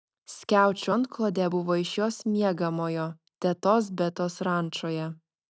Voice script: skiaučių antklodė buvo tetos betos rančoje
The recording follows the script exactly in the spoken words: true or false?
false